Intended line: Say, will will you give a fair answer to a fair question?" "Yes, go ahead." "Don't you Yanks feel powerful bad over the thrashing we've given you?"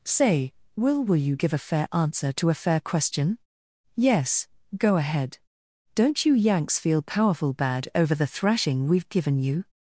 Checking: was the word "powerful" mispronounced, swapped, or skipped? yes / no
no